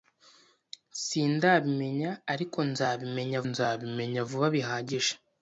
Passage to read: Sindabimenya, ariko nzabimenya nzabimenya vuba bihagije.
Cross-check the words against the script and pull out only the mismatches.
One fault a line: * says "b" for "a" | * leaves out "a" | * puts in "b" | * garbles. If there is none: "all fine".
all fine